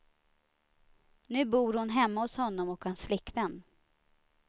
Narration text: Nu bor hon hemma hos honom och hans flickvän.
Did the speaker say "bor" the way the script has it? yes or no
yes